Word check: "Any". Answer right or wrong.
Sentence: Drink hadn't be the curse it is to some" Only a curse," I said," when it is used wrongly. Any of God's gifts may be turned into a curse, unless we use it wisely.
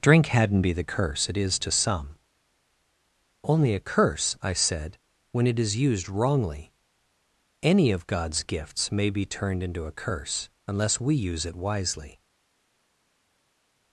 right